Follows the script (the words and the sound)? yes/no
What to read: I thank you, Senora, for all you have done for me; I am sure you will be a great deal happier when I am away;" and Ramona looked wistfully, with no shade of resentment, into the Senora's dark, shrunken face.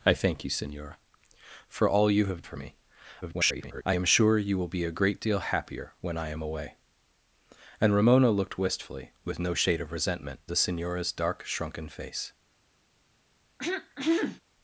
no